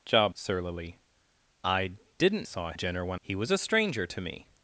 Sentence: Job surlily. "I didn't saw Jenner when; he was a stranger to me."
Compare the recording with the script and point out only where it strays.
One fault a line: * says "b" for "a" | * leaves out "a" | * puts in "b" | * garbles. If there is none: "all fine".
all fine